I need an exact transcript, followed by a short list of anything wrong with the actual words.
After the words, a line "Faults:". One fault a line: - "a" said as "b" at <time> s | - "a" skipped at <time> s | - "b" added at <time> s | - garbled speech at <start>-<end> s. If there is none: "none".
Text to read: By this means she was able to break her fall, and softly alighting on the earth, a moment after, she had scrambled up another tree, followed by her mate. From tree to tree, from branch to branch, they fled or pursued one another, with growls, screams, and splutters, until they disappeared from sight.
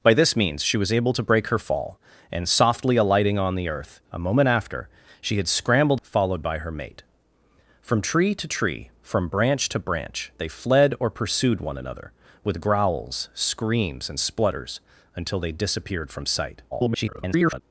By this means she was able to break her fall, and softly alighting on the earth, a moment after, she had scrambled followed by her mate. From tree to tree, from branch to branch, they fled or pursued one another, with growls, screams, and splutters, until they disappeared from sight. [garbled]
Faults:
- "up another tree" skipped at 6.0 s
- garbled speech at 16.7-17.6 s